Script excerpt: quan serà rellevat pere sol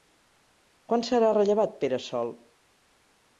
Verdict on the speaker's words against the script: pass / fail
pass